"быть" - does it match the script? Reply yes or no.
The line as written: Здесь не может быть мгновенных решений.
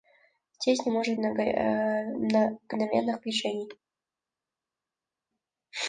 no